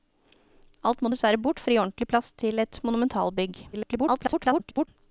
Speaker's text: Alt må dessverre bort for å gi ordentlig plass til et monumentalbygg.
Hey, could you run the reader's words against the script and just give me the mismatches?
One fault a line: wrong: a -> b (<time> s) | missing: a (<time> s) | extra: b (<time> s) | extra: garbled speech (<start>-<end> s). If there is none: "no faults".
extra: garbled speech (3.7-4.9 s)